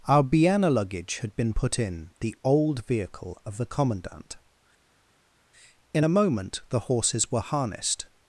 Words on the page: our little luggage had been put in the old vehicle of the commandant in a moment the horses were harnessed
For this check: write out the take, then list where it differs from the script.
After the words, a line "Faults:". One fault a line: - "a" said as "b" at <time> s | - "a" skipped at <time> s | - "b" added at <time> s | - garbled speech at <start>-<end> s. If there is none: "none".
our biana luggage had been put in the old vehicle of the commandant in a moment the horses were harnessed
Faults:
- "little" said as "biana" at 0.2 s